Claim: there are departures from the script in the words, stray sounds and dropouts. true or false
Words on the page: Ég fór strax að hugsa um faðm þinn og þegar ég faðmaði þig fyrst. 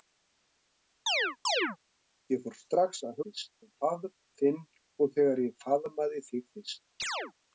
true